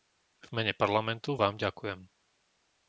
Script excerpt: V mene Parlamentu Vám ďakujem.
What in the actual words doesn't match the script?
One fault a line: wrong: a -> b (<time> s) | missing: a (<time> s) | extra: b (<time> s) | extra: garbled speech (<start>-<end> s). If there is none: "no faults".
no faults